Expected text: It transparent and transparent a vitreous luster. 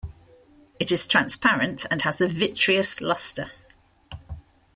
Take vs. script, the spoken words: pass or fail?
fail